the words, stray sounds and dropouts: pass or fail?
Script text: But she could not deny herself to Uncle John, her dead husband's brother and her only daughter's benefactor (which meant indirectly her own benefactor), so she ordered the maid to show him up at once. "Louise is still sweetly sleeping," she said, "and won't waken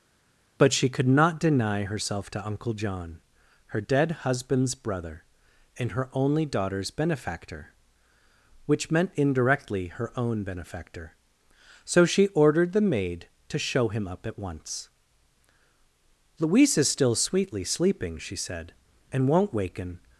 pass